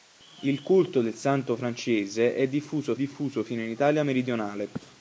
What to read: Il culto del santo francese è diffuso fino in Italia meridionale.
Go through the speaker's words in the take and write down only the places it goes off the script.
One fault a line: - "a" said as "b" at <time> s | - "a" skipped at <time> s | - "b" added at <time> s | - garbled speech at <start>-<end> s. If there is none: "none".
- "diffuso" added at 2.9 s